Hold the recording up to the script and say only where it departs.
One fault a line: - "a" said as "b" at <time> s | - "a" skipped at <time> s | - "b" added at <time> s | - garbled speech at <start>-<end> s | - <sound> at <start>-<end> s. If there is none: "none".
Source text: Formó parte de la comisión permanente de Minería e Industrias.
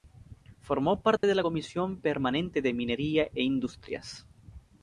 - dropout at 1.2-1.2 s